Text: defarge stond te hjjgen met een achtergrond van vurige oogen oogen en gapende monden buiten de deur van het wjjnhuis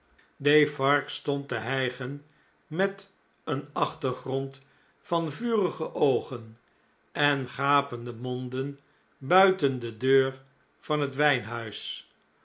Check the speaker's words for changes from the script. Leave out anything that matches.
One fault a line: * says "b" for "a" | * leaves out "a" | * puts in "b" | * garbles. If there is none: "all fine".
* leaves out "oogen"